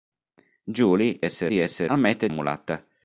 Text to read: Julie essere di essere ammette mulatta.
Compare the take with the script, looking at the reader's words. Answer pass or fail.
pass